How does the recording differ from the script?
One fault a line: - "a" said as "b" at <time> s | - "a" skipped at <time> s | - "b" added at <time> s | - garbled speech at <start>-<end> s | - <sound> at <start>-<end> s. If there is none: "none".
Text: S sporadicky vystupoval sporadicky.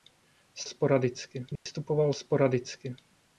- dropout at 1.6-1.7 s